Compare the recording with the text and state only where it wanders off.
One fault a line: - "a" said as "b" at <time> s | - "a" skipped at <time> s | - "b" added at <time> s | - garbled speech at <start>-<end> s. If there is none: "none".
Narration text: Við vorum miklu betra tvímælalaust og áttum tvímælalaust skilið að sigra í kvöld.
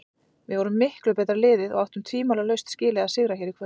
- "tvímælalaust" said as "liðið" at 1.4 s
- "hér" added at 3.4 s